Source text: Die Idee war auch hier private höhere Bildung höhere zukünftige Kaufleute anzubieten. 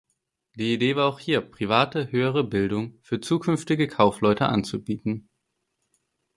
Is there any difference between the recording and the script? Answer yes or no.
yes